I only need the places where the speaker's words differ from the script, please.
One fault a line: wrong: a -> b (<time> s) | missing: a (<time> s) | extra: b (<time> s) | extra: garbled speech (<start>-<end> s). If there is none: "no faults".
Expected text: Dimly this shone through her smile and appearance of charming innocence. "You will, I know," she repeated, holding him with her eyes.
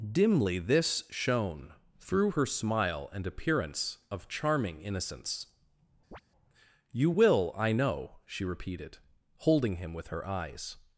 no faults